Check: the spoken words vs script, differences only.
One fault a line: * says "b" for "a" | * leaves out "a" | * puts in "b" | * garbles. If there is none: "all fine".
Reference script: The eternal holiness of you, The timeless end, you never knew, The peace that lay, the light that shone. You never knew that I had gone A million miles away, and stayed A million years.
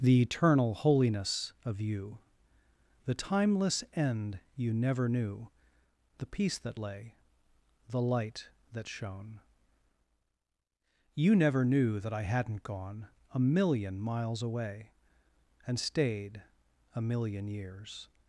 * says "hadn't" for "had"